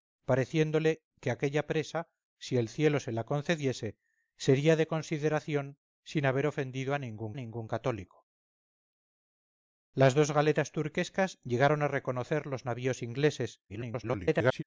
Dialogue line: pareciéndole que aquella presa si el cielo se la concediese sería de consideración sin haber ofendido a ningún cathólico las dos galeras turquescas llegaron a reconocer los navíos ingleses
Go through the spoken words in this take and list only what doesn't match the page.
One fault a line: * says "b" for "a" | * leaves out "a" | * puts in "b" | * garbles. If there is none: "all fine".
* puts in "ningún"
* garbles